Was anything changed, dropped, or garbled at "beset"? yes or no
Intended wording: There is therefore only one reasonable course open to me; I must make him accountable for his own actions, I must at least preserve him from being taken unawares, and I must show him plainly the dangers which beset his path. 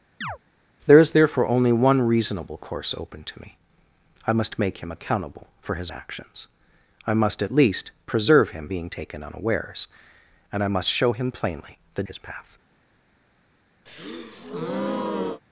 yes